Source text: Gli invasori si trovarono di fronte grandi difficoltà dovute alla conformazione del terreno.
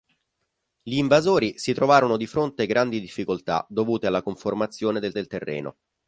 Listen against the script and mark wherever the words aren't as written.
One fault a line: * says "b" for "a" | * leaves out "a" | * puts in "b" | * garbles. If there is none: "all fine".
* puts in "del"